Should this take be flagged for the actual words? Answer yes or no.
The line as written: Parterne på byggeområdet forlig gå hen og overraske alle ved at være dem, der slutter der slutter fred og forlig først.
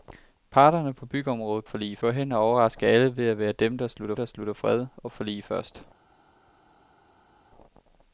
no